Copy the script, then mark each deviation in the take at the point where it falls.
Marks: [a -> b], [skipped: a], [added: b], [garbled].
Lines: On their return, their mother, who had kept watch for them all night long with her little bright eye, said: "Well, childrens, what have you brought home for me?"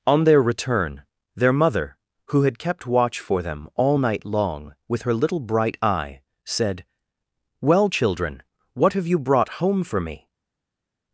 On their return, their mother, who had kept watch for them all night long with her little bright eye, said: "Well, [childrens, -> children] what have you brought home for me?"